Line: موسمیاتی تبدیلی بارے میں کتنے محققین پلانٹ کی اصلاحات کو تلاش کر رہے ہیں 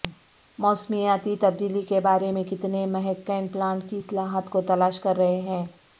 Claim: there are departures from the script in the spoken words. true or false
true